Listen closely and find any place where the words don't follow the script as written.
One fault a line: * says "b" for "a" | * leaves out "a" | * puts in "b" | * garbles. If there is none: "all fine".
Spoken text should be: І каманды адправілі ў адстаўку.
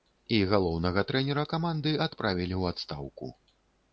* puts in "галоўнага трэнера"